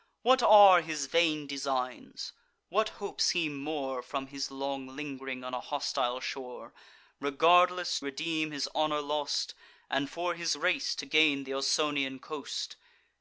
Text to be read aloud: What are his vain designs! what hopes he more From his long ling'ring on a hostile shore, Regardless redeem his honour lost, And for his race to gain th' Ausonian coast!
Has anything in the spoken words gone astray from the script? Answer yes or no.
no